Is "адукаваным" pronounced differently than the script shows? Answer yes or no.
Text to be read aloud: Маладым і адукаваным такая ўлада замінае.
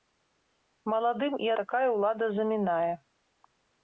yes